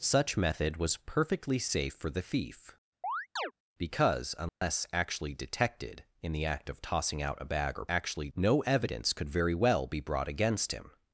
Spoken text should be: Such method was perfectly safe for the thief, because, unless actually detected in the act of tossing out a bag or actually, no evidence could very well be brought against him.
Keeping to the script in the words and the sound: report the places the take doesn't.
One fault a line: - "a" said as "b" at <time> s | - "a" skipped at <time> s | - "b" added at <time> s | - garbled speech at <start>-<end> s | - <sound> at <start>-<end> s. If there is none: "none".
- chirp at 3.0-3.5 s
- dropout at 4.5-4.6 s